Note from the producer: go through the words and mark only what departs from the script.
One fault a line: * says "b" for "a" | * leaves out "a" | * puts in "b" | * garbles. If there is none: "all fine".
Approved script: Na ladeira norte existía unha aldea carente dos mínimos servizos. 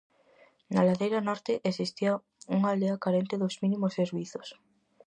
all fine